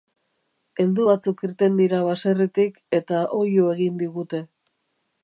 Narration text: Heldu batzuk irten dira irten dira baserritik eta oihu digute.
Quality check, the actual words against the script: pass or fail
fail